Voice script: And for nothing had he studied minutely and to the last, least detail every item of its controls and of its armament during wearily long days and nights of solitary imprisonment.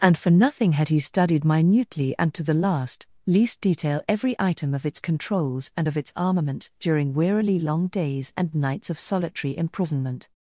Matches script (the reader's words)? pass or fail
pass